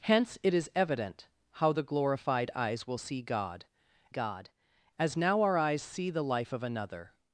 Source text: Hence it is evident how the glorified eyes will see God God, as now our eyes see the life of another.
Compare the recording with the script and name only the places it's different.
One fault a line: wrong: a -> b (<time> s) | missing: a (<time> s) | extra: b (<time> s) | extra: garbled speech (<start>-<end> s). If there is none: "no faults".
no faults